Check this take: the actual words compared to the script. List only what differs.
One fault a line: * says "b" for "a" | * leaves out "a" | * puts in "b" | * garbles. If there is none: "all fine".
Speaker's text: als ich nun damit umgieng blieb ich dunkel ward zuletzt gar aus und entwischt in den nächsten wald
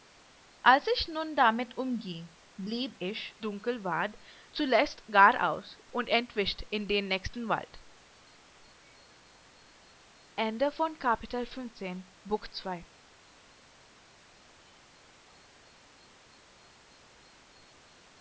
all fine